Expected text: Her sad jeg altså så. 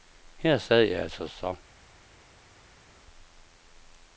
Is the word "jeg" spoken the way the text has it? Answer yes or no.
yes